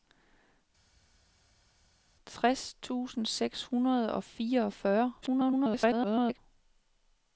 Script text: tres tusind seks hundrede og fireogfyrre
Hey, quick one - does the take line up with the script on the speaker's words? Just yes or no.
no